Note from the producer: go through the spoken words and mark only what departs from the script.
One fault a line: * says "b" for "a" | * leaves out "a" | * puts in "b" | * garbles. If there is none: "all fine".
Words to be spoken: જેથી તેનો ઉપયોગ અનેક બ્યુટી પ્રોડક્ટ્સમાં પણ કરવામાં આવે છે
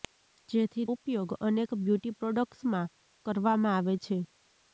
* leaves out "તેનો"
* leaves out "પણ"